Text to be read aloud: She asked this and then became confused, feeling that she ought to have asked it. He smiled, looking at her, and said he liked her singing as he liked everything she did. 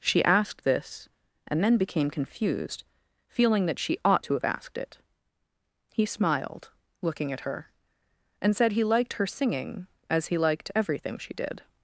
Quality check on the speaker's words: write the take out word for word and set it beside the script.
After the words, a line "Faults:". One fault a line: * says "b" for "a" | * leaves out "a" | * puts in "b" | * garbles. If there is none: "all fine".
She asked this and then became confused, feeling that she ought to have asked it. He smiled, looking at her, and said he liked her singing as he liked everything she did.
Faults:
all fine